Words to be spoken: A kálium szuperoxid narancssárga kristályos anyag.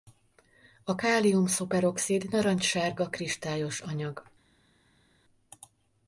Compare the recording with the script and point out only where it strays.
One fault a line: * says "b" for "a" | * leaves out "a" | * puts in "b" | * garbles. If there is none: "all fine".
all fine